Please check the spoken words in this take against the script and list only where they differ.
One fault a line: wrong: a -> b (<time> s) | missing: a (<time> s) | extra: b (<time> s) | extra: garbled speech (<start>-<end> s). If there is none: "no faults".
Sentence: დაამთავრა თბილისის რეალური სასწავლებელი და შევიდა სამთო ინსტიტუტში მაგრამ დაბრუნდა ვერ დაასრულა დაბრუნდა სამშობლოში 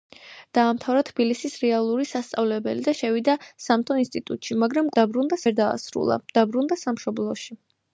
no faults